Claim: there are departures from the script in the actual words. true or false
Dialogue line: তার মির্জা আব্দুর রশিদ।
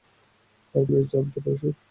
false